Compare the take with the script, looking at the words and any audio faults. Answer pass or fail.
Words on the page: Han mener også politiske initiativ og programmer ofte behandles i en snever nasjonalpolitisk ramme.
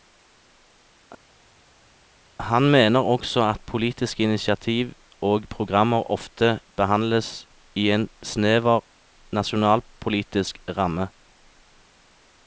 fail